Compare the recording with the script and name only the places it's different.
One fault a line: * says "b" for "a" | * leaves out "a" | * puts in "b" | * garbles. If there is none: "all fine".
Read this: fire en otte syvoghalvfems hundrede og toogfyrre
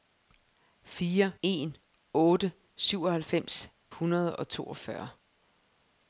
all fine